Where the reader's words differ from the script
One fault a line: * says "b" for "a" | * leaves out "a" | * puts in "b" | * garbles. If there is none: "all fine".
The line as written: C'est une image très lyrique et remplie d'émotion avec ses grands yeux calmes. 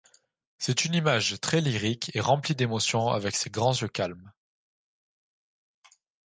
all fine